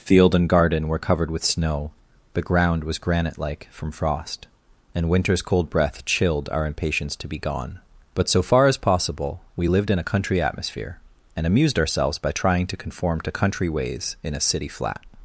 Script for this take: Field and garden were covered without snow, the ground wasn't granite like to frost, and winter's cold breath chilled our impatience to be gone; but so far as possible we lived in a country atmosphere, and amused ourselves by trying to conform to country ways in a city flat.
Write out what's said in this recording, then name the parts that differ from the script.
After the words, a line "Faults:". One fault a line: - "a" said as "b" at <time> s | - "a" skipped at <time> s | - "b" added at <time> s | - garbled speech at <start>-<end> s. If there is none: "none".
Field and garden were covered with snow, the ground was granite like from frost, and winter's cold breath chilled our impatience to be gone; but so far as possible we lived in a country atmosphere, and amused ourselves by trying to conform to country ways in a city flat.
Faults:
- "without" said as "with" at 1.3 s
- "wasn't" said as "was" at 2.8 s
- "to" said as "from" at 3.7 s